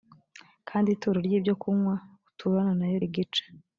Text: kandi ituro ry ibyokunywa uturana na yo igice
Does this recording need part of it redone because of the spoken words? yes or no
no